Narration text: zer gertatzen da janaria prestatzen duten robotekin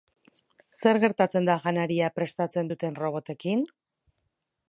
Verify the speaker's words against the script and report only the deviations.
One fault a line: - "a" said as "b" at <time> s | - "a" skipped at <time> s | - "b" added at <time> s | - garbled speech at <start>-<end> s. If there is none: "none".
none